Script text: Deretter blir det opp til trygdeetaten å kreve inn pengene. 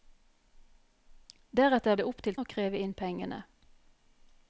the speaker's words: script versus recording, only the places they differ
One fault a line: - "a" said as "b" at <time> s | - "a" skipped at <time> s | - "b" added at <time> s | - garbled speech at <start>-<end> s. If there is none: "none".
- "blir" skipped at 1.9 s
- "trygdeetaten" skipped at 2.4 s